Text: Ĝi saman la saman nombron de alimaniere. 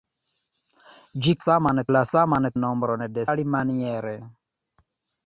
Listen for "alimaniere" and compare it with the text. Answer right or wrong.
right